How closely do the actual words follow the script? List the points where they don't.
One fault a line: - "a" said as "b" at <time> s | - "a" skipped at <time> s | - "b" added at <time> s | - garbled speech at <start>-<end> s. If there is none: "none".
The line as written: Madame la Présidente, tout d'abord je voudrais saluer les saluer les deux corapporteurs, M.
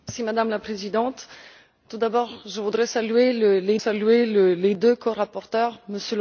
none